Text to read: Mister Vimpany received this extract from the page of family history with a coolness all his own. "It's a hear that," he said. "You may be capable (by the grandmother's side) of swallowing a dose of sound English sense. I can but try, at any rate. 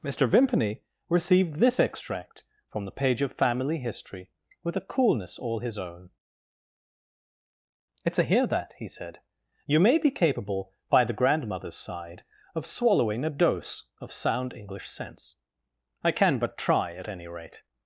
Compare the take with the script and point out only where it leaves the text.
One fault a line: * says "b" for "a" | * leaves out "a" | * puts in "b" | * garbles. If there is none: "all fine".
all fine